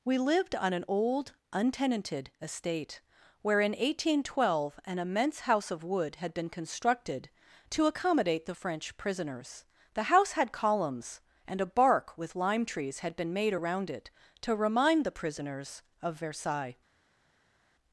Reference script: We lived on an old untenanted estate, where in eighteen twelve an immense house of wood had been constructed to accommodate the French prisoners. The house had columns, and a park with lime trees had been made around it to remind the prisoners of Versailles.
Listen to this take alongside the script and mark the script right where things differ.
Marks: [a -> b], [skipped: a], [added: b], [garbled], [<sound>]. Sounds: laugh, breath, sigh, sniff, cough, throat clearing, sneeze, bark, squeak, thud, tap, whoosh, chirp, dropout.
We lived on an old untenanted estate, where in eighteen twelve an immense house of wood had been constructed to accommodate the French prisoners. The house had columns, and a [park -> bark] with lime trees had been made around it to remind the prisoners of Versailles.